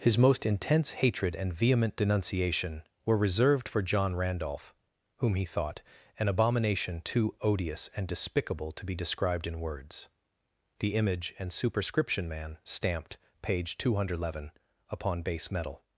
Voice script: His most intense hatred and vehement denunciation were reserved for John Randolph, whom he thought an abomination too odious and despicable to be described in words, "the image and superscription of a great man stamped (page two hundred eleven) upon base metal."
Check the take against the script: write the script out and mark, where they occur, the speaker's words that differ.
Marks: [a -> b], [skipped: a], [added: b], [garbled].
His most intense hatred and vehement denunciation were reserved for John Randolph, whom he thought an abomination too odious and despicable to be described in words, "the image and superscription [skipped: of a great] man stamped (page two hundred eleven) upon base metal."